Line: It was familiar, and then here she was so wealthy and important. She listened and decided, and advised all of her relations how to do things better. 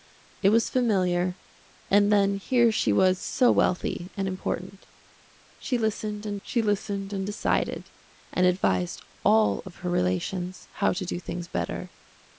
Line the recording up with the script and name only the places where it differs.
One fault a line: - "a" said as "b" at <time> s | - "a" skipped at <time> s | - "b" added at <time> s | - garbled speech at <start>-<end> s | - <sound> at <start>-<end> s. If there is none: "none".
- "she listened and" added at 6.4 s